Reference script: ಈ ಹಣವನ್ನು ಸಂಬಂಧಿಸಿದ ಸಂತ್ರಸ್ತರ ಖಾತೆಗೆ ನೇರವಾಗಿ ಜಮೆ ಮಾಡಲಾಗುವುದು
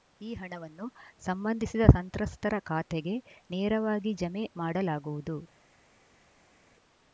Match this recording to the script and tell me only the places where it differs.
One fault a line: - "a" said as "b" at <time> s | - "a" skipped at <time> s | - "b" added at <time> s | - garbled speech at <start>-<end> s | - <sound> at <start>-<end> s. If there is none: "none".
none